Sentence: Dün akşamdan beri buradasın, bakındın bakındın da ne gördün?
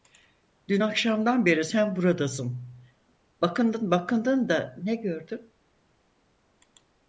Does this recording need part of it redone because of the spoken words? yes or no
yes